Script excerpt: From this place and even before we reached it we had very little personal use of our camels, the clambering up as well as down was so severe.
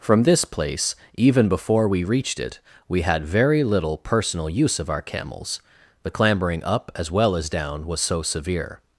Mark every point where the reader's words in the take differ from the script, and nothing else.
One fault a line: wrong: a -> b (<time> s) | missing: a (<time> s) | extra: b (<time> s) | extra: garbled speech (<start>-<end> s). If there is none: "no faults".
missing: and (0.9 s)